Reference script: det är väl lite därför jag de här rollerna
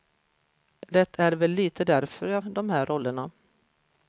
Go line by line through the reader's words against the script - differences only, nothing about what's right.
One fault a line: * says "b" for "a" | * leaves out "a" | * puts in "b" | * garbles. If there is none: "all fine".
all fine